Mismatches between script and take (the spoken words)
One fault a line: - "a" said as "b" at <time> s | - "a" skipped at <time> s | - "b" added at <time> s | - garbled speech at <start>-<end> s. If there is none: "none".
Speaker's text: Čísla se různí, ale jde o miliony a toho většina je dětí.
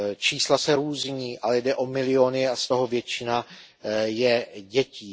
- "z" added at 2.6 s